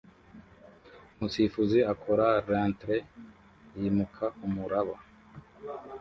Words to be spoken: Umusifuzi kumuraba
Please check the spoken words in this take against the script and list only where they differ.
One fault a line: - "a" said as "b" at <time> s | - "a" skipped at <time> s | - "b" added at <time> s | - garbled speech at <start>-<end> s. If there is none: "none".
- "akora reentry yimuka" added at 1.9 s